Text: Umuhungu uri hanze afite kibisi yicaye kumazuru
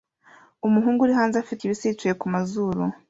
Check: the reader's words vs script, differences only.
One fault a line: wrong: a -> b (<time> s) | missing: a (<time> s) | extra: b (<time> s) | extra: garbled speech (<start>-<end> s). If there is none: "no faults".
no faults